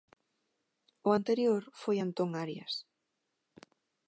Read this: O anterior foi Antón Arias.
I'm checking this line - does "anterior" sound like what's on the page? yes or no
yes